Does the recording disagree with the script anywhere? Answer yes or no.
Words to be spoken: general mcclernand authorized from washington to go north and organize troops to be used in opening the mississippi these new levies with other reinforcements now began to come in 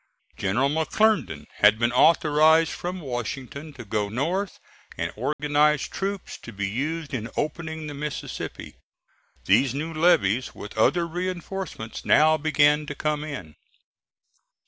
yes